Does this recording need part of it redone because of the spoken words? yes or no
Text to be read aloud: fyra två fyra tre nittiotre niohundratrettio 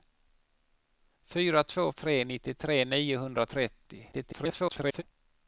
yes